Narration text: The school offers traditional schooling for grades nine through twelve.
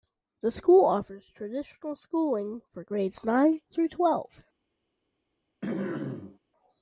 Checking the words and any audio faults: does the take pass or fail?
fail